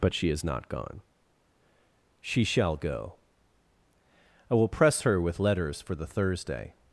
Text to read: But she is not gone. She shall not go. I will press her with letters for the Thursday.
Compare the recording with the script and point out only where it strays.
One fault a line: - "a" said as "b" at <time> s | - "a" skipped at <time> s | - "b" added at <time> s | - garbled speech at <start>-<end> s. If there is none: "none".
- "not" skipped at 2.8 s